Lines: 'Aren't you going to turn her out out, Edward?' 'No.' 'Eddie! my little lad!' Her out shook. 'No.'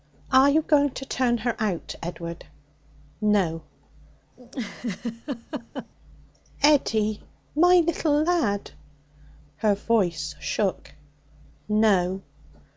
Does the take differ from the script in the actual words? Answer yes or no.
yes